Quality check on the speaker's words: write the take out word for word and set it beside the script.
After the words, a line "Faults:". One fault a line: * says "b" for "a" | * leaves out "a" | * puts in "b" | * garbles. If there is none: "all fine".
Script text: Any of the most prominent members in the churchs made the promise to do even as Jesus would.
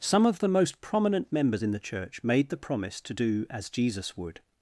Some of the most prominent members in the church made the promise to do as Jesus would.
Faults:
* says "Some" for "Any"
* says "church" for "churchs"
* leaves out "even"